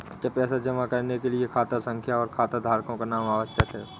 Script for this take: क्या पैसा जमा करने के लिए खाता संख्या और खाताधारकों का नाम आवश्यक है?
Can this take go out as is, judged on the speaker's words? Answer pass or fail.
pass